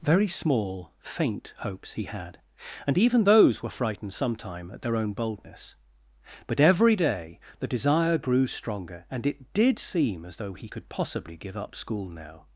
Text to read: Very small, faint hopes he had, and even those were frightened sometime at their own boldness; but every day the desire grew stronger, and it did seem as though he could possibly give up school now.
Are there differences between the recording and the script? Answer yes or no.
no